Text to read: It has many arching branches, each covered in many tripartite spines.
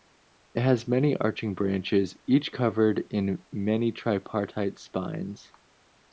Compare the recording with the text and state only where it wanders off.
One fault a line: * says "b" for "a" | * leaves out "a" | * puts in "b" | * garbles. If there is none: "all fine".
all fine